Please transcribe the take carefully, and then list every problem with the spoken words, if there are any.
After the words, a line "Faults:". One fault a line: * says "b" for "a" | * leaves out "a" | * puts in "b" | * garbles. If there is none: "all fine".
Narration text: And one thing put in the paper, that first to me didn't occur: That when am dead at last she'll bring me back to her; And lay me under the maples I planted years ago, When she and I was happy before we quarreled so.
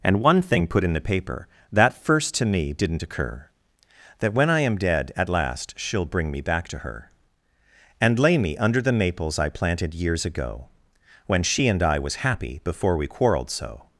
And one thing put in the paper, that first to me didn't occur: That when I am dead at last she'll bring me back to her; And lay me under the maples I planted years ago, When she and I was happy before we quarreled so.
Faults:
* puts in "I"